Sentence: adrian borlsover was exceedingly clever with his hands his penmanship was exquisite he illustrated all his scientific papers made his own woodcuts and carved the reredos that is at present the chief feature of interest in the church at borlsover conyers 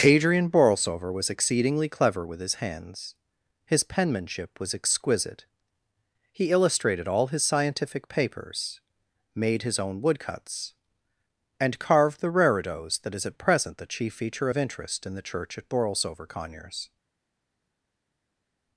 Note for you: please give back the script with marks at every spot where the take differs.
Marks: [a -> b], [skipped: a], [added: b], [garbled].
adrian borlsover was exceedingly clever with his hands his penmanship was exquisite he illustrated all his scientific papers made his own woodcuts and carved the reredos that is at present the chief feature of interest in the church at borlsover conyers